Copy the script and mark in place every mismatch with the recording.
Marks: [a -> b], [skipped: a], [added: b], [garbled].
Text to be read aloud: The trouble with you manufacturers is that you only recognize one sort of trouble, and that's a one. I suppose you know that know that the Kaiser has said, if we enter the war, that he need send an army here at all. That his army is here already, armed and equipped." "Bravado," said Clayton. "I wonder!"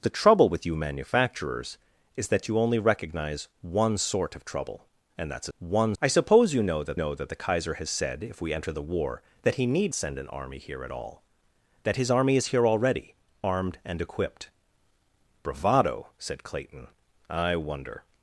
The trouble with you manufacturers is that you only recognize one sort of trouble, and that's a one. I suppose you know that know that the Kaiser has said, if we enter the war, that he need send an army here at all. That his army is here already, armed and equipped." "Bravado," said Clayton. "I wonder!"